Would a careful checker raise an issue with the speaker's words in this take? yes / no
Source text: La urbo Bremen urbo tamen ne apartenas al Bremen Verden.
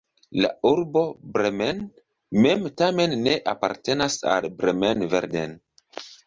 yes